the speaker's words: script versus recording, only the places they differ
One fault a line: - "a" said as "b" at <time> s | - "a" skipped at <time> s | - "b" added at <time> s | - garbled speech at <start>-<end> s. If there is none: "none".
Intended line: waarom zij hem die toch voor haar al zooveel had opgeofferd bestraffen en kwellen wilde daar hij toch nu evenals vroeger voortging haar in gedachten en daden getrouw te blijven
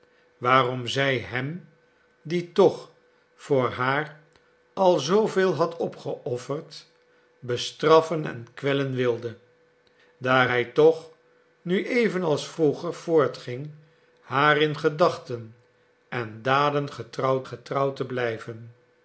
- "getrouw" added at 17.5 s